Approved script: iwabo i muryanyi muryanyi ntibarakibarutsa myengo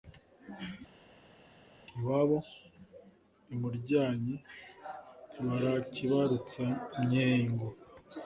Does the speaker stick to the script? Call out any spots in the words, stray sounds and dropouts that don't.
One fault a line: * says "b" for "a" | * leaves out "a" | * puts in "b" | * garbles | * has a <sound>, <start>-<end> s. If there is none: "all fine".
* leaves out "muryanyi"